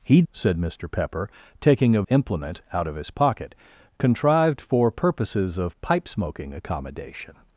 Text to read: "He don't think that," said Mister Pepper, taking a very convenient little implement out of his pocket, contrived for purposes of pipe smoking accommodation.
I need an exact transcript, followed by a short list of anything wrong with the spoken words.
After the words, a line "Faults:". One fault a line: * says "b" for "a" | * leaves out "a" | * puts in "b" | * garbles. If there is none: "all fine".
"He," said Mister Pepper, taking a implement out of his pocket, contrived for purposes of pipe smoking accommodation.
Faults:
* leaves out "don't think that"
* leaves out "very convenient little"